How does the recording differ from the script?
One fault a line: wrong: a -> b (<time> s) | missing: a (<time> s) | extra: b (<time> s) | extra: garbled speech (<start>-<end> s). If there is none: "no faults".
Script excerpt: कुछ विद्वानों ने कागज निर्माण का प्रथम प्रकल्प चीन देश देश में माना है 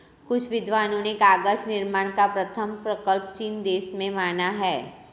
missing: देश (3.9 s)